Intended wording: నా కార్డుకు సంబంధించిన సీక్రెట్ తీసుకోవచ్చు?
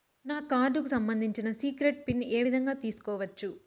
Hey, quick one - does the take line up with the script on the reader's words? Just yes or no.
no